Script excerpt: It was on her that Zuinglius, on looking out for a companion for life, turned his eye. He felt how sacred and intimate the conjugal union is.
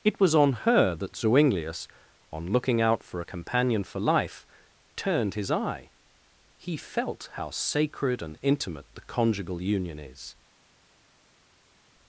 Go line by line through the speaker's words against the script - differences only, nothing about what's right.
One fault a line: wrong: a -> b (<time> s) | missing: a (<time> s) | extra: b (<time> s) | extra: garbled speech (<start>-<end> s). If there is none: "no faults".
no faults